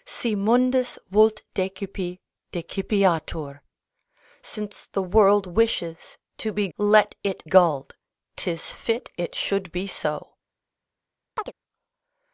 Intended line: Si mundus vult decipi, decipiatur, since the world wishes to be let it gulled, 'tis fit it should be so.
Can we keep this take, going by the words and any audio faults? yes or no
no